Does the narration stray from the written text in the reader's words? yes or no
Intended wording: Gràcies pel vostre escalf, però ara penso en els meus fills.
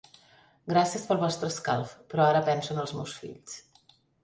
no